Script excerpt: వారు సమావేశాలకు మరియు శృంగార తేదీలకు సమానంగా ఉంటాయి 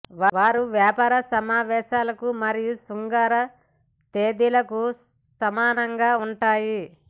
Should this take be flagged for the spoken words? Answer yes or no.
yes